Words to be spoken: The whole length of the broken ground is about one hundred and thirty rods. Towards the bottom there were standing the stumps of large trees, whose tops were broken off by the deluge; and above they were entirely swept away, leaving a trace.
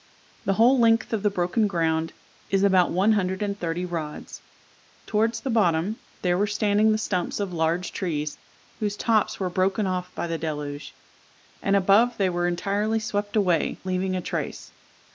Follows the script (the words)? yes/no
yes